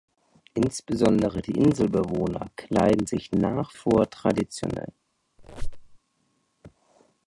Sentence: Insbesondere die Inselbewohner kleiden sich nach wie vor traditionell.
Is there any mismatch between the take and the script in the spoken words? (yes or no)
yes